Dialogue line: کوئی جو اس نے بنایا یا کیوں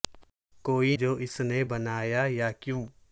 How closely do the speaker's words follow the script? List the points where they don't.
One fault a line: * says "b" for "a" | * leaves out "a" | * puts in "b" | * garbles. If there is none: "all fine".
all fine